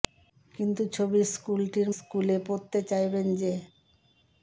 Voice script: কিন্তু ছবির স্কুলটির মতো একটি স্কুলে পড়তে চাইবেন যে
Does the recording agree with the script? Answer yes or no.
no